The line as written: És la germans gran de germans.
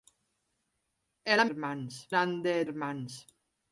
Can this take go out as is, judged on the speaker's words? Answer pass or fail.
pass